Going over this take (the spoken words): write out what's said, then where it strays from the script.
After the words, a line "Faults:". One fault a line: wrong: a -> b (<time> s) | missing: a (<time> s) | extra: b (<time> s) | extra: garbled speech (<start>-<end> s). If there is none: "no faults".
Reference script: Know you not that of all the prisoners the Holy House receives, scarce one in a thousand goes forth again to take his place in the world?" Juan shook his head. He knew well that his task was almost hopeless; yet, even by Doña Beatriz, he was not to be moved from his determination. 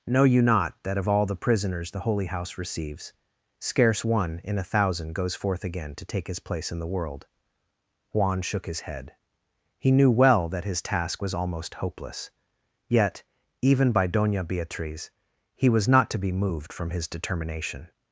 Know you not that of all the prisoners the Holy House receives, scarce one in a thousand goes forth again to take his place in the world?" Juan shook his head. He knew well that his task was almost hopeless; yet, even by Doña Beatriz, he was not to be moved from his determination.
Faults:
no faults